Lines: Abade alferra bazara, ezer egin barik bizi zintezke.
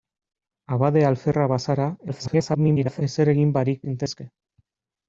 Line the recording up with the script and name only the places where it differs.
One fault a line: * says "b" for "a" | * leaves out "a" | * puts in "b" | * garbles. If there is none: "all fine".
* garbles
* leaves out "bizi"